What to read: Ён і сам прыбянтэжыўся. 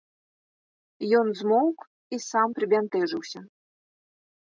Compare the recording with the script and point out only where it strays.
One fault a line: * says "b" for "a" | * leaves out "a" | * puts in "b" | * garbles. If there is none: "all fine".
* puts in "змоўк"